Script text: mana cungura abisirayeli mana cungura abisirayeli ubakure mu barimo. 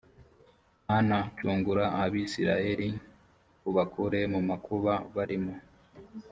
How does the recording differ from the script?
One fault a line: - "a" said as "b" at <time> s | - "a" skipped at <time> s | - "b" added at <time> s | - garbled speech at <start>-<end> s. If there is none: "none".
- "mana cungura abisirayeli" skipped at 2.9 s
- "makuba" added at 4.5 s